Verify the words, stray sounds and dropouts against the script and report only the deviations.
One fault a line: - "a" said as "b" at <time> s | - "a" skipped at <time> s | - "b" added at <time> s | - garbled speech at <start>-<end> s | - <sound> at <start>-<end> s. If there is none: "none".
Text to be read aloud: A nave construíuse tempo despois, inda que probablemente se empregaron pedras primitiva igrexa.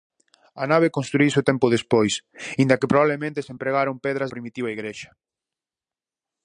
none